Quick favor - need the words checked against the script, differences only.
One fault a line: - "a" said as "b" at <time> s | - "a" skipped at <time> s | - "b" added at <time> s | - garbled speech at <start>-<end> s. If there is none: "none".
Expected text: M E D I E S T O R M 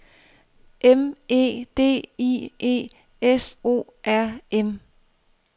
- "T" skipped at 3.6 s